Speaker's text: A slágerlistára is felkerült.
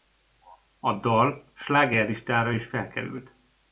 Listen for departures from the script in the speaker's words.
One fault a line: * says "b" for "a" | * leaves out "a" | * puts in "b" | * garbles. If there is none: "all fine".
* puts in "dal"